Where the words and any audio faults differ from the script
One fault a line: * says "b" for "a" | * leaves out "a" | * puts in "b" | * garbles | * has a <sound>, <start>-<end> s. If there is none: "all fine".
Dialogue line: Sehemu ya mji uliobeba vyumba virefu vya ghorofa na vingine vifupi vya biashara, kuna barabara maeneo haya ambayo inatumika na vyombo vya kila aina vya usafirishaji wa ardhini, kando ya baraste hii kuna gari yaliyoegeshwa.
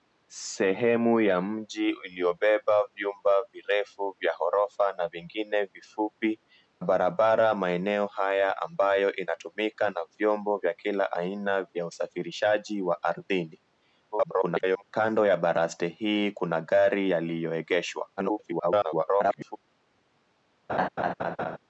* leaves out "vya biashara kuna"
* garbles
* garbles
* has a laugh, 20.7-21.6 s